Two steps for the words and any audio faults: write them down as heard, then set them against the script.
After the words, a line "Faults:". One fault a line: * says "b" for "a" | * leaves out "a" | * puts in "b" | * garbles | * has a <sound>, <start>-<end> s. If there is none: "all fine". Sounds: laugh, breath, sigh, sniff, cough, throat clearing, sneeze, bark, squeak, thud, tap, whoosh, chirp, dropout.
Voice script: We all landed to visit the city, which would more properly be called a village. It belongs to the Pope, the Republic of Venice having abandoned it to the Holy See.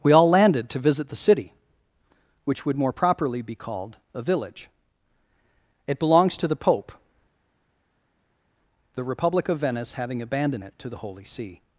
We all landed to visit the city, which would more properly be called a village. It belongs to the Pope, the Republic of Venice having abandoned it to the Holy See.
Faults:
all fine